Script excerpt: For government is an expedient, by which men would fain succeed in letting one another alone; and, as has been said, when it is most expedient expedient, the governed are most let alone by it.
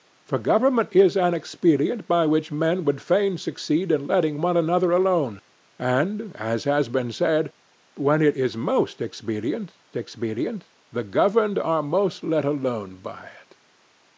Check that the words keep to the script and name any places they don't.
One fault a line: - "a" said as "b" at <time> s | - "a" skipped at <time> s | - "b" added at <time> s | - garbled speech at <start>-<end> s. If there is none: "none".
none